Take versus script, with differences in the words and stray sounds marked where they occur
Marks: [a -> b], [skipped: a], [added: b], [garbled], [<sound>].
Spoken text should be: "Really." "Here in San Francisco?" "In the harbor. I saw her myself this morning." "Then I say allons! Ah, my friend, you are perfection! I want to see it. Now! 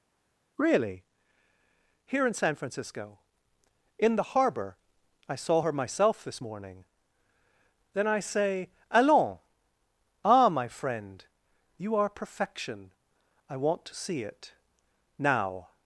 "Really." "Here in San Francisco?" "In the harbor. I saw her myself this morning." "Then I say allons! Ah, my friend, you are perfection! I want to see it. Now!